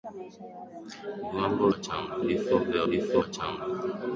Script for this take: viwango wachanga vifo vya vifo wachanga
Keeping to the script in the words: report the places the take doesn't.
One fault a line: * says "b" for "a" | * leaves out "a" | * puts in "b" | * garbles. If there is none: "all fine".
all fine